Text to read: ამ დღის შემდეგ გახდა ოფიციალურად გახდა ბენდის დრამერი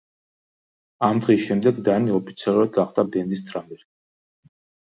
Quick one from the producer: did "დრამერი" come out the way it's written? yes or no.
yes